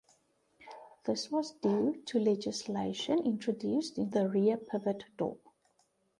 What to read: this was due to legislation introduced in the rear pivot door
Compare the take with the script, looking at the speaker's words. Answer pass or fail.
pass